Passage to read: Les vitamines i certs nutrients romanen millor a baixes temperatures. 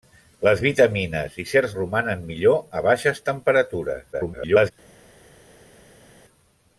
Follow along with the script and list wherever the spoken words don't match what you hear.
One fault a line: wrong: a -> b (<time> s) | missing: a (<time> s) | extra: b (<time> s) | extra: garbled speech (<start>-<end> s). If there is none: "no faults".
missing: nutrients (1.7 s)
extra: garbled speech (4.1-4.7 s)